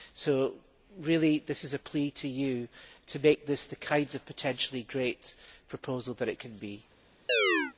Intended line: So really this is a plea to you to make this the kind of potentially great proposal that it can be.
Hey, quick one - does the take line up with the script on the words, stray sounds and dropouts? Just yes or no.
no